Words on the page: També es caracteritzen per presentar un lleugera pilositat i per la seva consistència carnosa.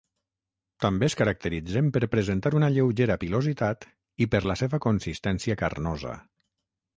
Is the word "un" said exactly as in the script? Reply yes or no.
no